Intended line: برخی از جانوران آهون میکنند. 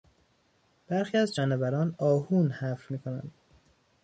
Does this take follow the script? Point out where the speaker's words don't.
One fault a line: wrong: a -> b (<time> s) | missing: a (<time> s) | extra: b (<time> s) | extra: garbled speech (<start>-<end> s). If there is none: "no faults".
extra: حفر (2.5 s)